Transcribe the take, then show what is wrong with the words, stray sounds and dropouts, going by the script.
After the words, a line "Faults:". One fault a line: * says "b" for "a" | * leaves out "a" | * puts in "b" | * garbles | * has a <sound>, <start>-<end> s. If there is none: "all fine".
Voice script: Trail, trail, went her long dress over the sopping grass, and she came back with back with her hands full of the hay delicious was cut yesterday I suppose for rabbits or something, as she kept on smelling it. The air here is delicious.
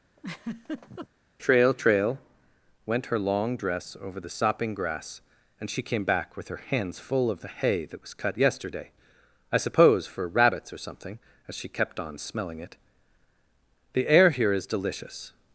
Trail, trail, went her long dress over the sopping grass, and she came back with her hands full of the hay that was cut yesterday I suppose for rabbits or something, as she kept on smelling it. The air here is delicious.
Faults:
* has a laugh, 0.2-1.1 s
* leaves out "back with"
* says "that" for "delicious"